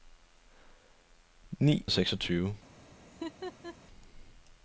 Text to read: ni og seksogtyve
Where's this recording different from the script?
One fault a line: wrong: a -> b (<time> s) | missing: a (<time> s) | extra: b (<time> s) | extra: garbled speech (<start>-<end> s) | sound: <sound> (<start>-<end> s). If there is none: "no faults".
sound: laugh (3.1-3.8 s)